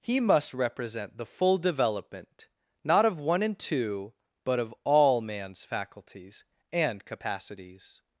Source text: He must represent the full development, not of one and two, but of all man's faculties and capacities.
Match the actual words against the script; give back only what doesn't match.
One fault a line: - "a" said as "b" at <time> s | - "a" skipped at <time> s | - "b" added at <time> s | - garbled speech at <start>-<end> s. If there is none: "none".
none